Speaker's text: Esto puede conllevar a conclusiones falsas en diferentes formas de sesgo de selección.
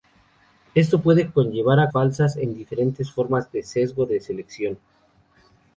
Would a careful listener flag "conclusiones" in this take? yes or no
yes